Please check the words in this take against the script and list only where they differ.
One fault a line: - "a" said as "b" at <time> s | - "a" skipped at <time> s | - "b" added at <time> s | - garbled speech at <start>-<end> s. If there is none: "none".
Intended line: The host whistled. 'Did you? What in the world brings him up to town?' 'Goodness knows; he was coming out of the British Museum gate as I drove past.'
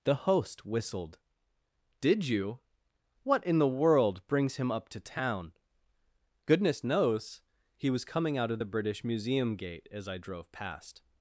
none